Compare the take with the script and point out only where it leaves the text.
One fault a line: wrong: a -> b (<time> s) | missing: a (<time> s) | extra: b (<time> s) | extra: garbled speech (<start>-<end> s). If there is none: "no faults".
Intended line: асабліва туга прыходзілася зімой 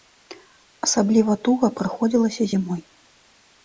no faults